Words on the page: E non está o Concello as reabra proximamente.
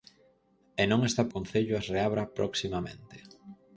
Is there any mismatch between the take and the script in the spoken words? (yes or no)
no